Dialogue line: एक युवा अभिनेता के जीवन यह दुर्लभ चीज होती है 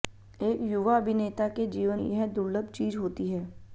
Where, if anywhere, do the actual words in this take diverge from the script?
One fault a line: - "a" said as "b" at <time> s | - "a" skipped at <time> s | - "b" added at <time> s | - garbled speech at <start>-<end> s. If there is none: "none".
none